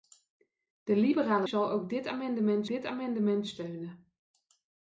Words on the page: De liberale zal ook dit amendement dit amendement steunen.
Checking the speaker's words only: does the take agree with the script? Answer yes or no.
yes